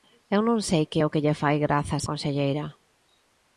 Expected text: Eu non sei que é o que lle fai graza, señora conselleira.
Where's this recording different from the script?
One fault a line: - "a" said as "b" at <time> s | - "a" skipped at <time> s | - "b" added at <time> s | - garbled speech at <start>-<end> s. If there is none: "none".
- "señora" skipped at 2.1 s